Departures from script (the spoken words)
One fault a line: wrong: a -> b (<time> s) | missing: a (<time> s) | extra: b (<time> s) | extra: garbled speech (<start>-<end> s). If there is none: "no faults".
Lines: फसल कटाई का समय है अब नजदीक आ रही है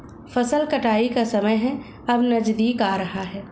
wrong: रही -> रहा (3.0 s)